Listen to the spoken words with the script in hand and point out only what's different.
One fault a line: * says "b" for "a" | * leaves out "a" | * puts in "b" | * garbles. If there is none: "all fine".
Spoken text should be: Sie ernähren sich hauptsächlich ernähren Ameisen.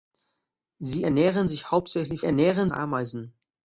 all fine